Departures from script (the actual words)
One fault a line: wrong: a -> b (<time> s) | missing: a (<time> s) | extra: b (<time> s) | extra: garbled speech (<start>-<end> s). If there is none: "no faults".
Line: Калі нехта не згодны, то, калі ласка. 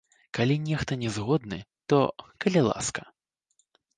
no faults